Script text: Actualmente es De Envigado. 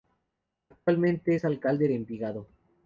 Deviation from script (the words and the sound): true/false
true